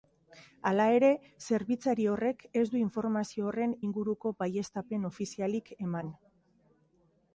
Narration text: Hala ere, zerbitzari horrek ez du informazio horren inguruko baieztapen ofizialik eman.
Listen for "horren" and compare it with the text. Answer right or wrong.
right